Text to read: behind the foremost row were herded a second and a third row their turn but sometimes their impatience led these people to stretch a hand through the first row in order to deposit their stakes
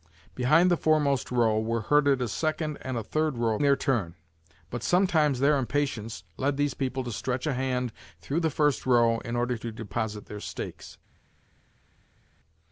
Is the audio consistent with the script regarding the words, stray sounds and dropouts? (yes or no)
yes